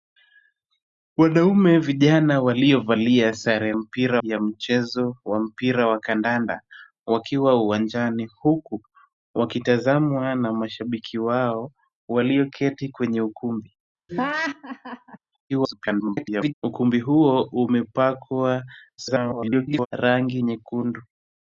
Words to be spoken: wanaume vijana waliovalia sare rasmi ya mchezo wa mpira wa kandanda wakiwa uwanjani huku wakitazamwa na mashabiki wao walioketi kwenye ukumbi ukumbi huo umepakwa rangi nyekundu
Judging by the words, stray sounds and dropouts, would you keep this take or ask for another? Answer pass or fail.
fail